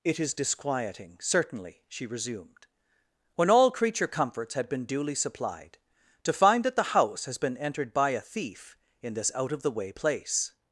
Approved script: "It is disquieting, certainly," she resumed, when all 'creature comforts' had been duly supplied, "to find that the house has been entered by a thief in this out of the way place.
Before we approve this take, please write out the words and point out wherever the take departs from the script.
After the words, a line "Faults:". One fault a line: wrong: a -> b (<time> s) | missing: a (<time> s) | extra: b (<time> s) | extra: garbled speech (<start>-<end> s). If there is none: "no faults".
"It is disquieting, certainly," she resumed, when all 'creature comforts' had been duly supplied, "to find that the house has been entered by a thief in this out of the way place.
Faults:
no faults